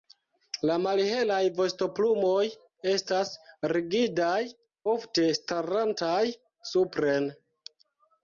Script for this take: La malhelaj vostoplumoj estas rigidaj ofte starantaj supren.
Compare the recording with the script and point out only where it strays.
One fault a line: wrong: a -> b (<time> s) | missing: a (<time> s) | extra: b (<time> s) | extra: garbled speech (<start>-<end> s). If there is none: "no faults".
no faults